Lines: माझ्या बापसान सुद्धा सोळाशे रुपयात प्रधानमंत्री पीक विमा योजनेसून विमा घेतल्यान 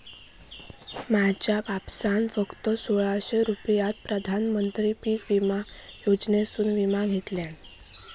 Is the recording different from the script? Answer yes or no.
yes